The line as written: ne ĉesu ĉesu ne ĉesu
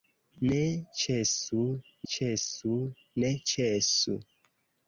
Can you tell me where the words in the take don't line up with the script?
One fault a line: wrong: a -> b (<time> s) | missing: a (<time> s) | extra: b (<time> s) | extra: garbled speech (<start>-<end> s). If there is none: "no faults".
no faults